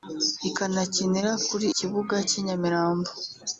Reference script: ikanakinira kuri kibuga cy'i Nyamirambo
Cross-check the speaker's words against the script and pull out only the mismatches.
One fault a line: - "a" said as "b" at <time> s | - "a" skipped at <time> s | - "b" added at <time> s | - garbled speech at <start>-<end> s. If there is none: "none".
none